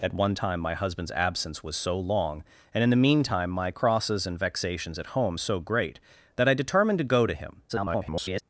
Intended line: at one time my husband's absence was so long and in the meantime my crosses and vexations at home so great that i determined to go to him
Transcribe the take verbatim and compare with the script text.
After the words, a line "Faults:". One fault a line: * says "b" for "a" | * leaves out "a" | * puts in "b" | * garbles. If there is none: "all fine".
at one time my husband's absence was so long and in the meantime my crosses and vexations at home so great that i determined to go to him [garbled]
Faults:
* garbles